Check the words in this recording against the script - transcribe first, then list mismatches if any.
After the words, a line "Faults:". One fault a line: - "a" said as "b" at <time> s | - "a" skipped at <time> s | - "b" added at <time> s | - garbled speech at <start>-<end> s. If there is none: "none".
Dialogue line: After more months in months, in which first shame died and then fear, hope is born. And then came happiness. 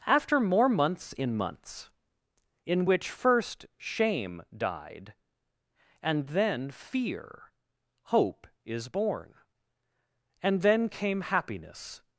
After more months in months, in which first shame died and then fear, hope is born. And then came happiness.
Faults:
none